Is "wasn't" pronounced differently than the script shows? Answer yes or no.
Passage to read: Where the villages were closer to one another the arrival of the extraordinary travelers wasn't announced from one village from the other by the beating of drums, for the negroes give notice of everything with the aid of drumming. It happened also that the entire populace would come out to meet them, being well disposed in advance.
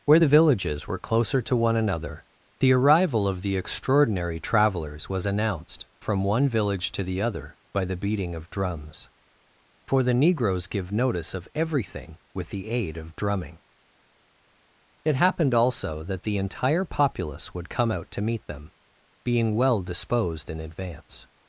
yes